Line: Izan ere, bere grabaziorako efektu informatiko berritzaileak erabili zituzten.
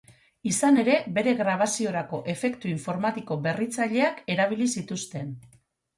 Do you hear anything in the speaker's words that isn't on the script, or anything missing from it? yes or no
no